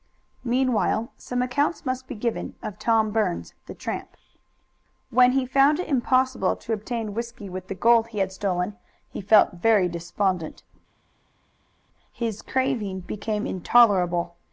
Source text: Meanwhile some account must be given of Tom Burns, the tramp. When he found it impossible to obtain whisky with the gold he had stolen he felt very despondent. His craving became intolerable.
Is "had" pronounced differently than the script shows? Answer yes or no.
no